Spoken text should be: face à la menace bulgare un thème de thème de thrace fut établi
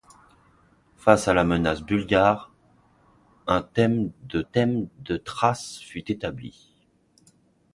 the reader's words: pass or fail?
pass